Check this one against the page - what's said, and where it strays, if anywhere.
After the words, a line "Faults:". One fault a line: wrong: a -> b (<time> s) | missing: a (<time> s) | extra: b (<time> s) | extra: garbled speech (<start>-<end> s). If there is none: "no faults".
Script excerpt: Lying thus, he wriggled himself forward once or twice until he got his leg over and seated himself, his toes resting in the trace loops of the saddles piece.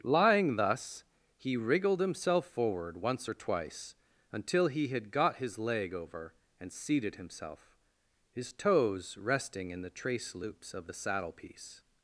Lying thus, he wriggled himself forward once or twice until he had got his leg over and seated himself, his toes resting in the trace loops of the saddle piece.
Faults:
extra: had (4.9 s)
wrong: saddles -> saddle (10.9 s)